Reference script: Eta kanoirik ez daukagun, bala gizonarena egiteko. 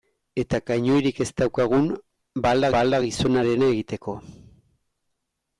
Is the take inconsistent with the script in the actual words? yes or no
yes